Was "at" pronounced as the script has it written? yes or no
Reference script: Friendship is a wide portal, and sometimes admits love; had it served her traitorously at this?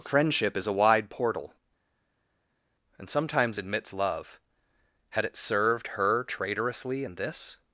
no